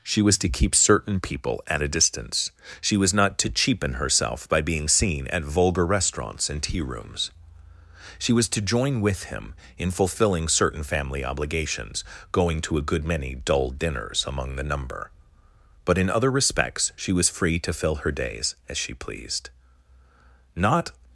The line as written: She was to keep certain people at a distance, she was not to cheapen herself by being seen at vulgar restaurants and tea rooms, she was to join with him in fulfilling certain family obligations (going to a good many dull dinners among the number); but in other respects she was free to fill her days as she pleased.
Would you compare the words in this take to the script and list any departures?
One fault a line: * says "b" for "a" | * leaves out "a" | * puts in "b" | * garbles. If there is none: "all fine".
* puts in "Not"